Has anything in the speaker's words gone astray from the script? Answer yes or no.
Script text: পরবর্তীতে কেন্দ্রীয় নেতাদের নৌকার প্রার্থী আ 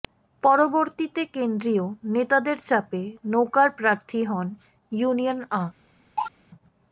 yes